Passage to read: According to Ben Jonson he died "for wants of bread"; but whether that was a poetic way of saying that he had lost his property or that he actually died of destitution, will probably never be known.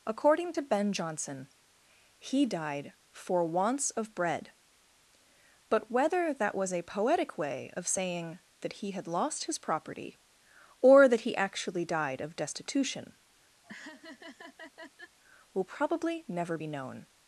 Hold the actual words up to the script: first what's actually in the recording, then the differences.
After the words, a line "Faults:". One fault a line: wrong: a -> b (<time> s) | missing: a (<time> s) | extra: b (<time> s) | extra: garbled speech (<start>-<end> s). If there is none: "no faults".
According to Ben Jonson he died "for wants of bread"; but whether that was a poetic way of saying that he had lost his property or that he actually died of destitution, will probably never be known.
Faults:
no faults